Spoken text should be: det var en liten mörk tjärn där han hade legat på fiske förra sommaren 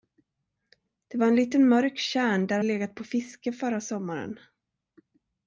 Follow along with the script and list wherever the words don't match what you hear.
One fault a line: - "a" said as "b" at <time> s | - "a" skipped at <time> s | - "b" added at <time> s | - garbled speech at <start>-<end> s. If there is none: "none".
- "han hade" skipped at 2.6 s